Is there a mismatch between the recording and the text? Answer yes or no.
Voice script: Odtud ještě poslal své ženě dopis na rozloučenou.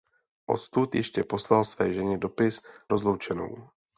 yes